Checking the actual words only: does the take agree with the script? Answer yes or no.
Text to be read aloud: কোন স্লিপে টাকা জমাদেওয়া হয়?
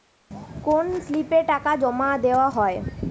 yes